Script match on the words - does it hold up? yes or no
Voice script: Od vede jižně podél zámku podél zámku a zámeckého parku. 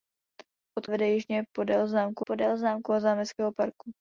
yes